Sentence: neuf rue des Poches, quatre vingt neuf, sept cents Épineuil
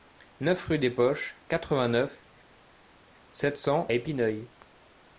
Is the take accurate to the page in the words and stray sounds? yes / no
yes